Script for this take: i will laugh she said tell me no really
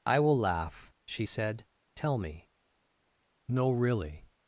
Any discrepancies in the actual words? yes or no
no